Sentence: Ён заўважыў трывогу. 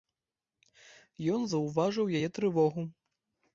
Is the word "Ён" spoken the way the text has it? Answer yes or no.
yes